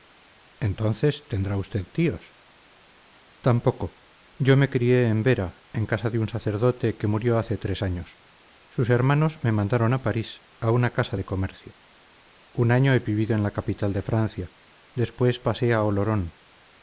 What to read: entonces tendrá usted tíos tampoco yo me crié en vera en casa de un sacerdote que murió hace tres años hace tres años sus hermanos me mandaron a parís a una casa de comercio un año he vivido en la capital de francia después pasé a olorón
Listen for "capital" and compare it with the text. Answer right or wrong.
right